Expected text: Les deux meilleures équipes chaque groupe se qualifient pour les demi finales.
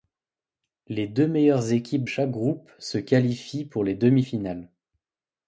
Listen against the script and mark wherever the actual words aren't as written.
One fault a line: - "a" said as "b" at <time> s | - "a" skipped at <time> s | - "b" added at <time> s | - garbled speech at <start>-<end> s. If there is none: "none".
none